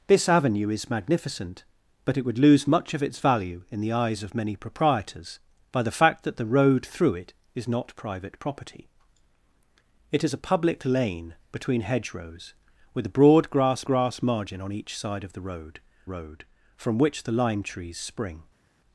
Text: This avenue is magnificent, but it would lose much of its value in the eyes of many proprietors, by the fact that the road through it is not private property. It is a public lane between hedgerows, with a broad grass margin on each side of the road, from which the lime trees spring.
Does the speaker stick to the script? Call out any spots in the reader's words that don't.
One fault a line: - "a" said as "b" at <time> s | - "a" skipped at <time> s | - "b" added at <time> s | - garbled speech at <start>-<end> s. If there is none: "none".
- "grass" added at 13.8 s
- "road" added at 16.0 s